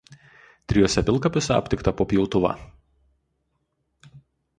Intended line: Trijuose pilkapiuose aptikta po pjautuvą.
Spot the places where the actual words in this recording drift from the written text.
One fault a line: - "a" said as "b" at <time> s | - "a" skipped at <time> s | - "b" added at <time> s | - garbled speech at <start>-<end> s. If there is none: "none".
none